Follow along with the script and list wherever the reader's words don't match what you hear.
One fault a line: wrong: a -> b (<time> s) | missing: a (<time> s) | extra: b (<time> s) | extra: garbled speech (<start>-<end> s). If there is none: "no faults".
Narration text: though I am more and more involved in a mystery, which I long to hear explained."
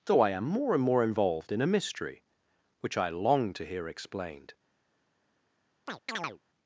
no faults